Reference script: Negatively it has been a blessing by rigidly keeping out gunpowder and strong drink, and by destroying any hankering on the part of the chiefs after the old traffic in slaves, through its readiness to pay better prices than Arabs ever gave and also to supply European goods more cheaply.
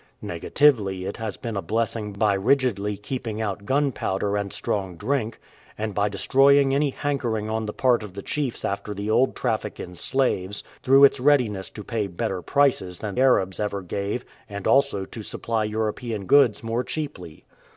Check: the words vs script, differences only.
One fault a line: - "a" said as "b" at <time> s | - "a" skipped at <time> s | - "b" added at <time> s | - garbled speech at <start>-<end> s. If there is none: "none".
none